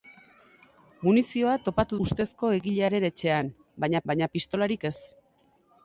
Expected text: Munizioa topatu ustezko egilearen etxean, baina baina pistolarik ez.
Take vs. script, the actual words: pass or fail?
pass